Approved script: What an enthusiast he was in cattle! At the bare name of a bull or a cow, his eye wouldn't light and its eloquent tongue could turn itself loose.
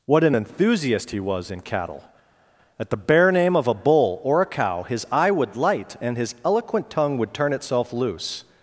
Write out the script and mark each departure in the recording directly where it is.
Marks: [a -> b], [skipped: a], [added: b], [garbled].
What an enthusiast he was in cattle! At the bare name of a bull or a cow, his eye [wouldn't -> would] light and [its -> his] eloquent tongue [could -> would] turn itself loose.